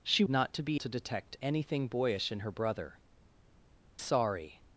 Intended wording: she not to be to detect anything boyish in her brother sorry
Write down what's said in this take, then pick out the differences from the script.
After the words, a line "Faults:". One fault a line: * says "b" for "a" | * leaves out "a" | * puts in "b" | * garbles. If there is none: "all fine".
she not to be to detect anything boyish in her brother sorry
Faults:
all fine